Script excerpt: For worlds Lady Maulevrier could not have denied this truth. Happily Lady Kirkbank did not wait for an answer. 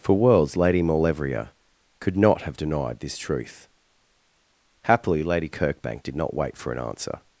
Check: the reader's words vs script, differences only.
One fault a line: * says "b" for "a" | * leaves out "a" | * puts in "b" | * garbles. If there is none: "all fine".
all fine